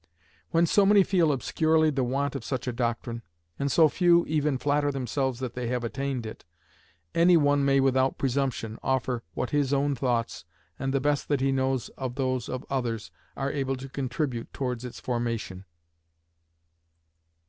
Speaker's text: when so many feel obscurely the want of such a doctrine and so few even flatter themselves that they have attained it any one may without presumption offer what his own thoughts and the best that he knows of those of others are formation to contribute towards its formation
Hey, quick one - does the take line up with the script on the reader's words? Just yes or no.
no